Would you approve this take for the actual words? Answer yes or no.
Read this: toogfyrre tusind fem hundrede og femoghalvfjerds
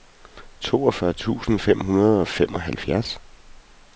yes